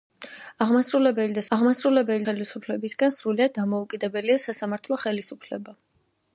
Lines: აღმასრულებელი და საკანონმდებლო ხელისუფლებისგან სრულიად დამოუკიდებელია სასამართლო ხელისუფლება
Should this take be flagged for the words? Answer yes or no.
yes